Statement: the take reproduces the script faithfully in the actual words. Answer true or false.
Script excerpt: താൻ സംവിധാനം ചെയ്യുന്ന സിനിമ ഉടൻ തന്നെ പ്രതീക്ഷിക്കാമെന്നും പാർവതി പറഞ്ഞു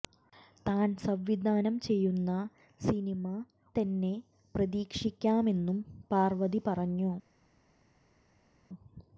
false